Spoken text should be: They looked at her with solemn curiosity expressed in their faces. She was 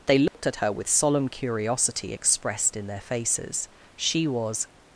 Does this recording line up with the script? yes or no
yes